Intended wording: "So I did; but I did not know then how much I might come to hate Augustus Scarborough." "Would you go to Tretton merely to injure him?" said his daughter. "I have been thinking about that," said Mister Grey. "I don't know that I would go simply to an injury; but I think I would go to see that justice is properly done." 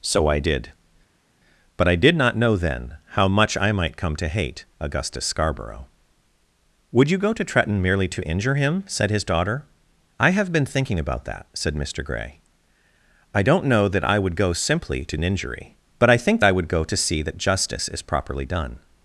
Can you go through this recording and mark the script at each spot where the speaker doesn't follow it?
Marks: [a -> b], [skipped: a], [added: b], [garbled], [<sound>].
"So I did; but I did not know then how much I might come to hate Augustus Scarborough." "Would you go to Tretton merely to injure him?" said his daughter. "I have been thinking about that," said Mister Grey. "I don't know that I would go simply to an injury; but I think I would go to see that justice is properly done."